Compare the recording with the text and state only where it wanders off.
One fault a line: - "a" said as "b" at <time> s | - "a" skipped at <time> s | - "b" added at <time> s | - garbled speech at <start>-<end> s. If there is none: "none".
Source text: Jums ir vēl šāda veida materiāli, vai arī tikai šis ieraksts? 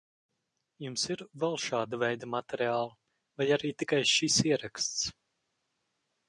none